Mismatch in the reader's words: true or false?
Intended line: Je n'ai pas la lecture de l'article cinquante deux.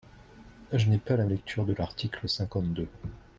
false